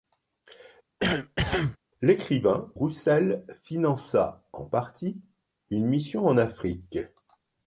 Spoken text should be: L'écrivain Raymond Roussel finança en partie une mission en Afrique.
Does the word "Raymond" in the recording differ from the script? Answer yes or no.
yes